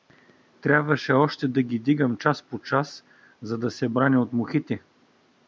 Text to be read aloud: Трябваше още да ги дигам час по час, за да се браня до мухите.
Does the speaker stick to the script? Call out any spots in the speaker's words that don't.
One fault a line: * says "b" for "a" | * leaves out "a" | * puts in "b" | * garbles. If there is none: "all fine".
* says "от" for "до"